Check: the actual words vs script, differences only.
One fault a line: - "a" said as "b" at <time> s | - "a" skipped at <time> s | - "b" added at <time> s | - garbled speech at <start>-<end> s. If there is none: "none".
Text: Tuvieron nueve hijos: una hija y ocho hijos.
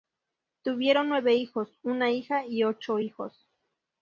none